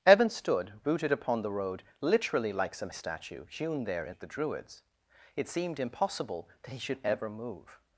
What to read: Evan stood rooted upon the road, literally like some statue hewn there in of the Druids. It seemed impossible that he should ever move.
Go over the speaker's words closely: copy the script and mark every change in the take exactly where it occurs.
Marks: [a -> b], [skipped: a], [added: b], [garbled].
Evan stood rooted upon the road, literally like some statue hewn there in of the Druids. It seemed impossible that he should ever move.